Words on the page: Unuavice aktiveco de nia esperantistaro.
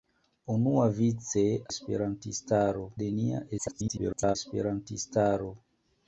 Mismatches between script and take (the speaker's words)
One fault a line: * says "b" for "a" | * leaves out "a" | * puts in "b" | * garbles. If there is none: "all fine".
* says "esperantistaro" for "aktiveco"
* garbles